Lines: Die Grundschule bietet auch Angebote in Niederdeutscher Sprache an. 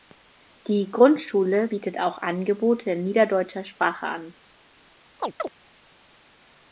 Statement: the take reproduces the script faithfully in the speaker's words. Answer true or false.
true